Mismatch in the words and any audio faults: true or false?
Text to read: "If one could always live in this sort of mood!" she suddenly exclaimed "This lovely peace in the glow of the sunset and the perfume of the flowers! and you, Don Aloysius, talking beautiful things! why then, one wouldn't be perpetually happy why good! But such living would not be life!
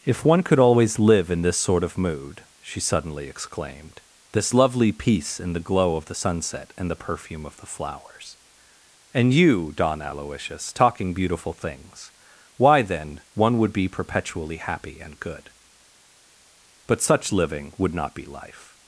true